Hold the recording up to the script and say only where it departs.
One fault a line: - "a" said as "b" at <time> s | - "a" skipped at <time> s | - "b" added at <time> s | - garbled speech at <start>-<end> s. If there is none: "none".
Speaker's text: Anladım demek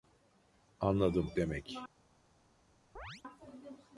none